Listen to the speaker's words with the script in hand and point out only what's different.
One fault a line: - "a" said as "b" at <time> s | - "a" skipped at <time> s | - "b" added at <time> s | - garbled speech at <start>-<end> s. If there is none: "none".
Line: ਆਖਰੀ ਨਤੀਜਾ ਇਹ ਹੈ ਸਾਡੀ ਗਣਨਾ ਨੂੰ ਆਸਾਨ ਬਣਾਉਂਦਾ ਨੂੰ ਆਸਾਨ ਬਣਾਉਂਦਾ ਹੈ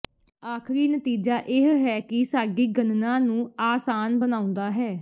- "ਕਿ" added at 2.0 s
- "ਨੂੰ ਆਸਾਨ ਬਣਾਉਂਦਾ" skipped at 4.7 s